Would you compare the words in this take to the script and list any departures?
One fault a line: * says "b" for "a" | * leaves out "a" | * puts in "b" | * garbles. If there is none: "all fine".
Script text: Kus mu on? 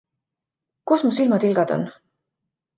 * puts in "silmatilgad"